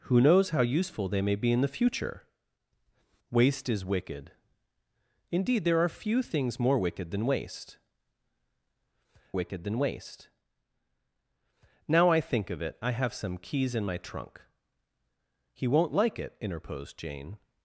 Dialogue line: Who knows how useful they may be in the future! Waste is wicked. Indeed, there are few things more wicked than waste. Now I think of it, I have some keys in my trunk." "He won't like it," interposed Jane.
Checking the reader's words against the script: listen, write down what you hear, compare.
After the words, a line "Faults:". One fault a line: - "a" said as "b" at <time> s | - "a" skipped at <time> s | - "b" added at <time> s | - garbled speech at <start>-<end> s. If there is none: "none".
Who knows how useful they may be in the future! Waste is wicked. Indeed, there are few things more wicked than waste wicked than waste. Now I think of it, I have some keys in my trunk." "He won't like it," interposed Jane.
Faults:
- "wicked than waste" added at 9.3 s